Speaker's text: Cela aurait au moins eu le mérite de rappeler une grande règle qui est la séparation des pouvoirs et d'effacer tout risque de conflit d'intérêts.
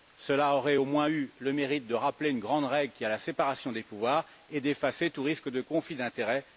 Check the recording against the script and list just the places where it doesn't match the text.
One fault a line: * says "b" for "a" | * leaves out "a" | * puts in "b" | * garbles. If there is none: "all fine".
all fine